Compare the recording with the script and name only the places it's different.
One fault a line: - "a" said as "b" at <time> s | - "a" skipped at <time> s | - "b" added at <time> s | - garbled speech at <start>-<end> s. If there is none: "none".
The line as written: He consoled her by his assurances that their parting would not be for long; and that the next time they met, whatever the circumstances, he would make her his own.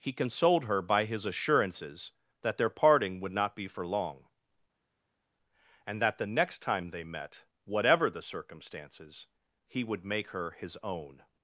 none